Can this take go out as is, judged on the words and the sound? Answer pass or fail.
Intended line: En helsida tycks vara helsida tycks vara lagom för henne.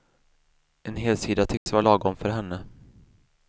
fail